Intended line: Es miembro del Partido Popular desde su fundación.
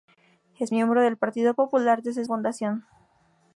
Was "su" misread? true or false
true